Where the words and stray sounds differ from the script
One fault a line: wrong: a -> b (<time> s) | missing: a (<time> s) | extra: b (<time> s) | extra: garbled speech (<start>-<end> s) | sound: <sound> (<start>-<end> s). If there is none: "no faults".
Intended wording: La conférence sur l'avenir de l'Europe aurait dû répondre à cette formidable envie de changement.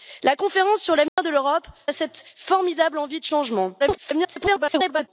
sound: dropout (1.1-1.2 s)
missing: aurait dû répondre (1.7 s)
extra: garbled speech (3.8-5.1 s)